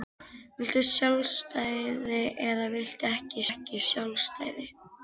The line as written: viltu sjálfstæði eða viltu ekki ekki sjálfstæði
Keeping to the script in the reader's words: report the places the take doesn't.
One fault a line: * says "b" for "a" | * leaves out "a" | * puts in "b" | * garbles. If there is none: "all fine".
all fine